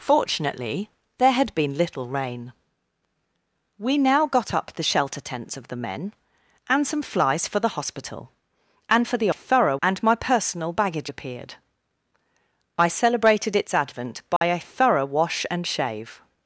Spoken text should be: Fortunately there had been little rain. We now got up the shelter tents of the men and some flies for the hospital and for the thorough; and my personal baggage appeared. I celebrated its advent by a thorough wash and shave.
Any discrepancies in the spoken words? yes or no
no